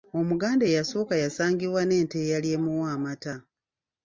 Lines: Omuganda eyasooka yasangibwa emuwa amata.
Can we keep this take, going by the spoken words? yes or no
no